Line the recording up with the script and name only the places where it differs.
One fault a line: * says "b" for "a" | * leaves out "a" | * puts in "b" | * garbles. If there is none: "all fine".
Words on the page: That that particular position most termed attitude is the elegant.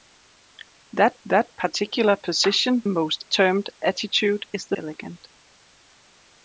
all fine